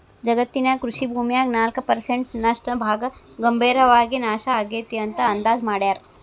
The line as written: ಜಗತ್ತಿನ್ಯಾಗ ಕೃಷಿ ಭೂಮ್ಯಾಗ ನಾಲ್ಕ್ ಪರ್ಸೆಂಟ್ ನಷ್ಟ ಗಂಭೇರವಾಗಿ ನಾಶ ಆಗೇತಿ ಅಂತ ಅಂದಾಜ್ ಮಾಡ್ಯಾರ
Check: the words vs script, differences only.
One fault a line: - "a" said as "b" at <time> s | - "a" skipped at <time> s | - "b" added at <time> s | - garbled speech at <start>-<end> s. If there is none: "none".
- "ಭಾಗ" added at 2.8 s